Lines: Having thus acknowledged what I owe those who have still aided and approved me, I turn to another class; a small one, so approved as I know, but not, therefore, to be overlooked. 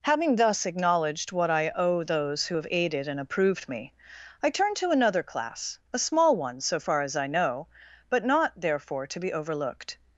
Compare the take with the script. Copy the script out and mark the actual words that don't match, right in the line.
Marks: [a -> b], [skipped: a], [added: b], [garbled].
Having thus acknowledged what I owe those who have [skipped: still] aided and approved me, I turn to another class; a small one, so [approved -> far] as I know, but not, therefore, to be overlooked.